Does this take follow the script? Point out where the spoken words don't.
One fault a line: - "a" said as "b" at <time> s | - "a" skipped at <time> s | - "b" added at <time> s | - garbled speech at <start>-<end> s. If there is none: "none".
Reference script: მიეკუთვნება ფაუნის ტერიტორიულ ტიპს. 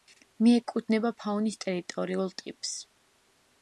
none